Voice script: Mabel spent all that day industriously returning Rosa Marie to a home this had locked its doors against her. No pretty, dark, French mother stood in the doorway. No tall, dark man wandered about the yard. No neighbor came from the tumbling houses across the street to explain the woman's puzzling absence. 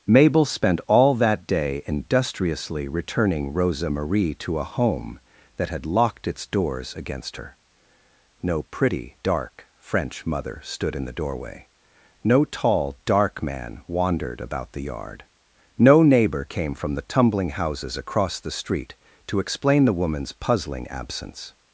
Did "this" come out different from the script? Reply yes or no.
yes